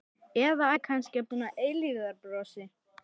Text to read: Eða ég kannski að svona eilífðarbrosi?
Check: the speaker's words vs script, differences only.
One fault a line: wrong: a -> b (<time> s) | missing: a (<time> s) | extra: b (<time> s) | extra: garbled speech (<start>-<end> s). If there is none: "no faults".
no faults